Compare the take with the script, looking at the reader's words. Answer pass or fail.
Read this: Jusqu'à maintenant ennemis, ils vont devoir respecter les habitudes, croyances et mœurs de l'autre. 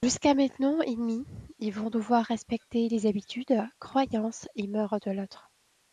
pass